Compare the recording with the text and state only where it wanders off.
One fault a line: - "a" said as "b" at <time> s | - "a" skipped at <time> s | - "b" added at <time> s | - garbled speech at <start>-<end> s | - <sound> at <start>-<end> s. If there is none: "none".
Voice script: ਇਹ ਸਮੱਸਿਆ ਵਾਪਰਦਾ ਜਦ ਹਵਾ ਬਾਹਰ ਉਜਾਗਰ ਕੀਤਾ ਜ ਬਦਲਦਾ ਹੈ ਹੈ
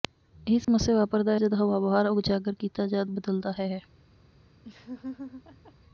- dropout at 0.6-0.7 s
- laugh at 4.6-5.7 s